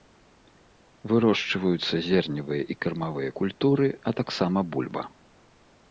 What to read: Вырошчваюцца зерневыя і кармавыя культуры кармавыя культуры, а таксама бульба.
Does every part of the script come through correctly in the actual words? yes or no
no